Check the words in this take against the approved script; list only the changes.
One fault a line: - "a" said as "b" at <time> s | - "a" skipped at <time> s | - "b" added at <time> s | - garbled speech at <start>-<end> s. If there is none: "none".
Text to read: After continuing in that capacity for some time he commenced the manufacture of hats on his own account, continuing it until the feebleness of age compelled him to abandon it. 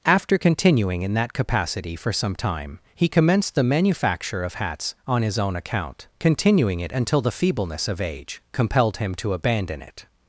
none